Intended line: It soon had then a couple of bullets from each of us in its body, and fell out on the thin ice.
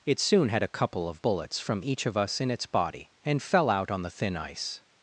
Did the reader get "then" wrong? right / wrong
wrong